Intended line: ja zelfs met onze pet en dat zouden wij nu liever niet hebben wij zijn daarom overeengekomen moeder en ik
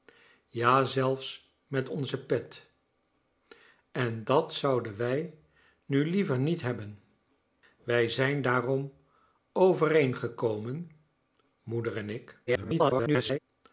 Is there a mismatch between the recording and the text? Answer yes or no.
yes